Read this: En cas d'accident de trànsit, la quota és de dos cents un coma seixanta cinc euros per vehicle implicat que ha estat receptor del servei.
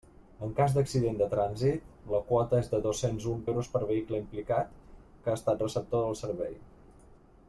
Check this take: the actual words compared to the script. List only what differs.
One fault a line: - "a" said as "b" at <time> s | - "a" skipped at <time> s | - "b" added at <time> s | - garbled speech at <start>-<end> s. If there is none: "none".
- "coma seixanta cinc" skipped at 3.4 s